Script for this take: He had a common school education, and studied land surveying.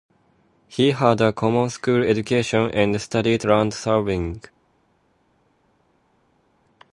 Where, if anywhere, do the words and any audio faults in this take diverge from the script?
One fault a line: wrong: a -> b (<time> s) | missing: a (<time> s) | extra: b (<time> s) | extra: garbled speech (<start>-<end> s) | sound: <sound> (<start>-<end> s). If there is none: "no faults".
no faults